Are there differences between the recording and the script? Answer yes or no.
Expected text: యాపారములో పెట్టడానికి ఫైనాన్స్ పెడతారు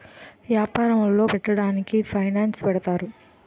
no